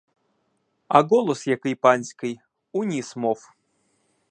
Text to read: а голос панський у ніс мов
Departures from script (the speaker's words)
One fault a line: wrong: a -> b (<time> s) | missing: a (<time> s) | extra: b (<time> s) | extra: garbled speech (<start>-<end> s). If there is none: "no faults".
extra: який (1.5 s)